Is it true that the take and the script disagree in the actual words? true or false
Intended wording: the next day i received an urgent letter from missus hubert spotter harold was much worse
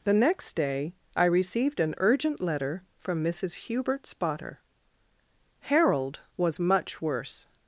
false